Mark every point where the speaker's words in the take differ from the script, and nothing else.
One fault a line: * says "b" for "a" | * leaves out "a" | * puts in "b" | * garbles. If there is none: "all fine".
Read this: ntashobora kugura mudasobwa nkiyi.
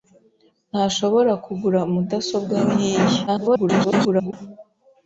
* garbles